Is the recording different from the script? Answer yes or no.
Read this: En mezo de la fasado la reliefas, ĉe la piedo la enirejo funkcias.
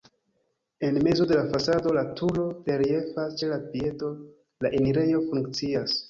yes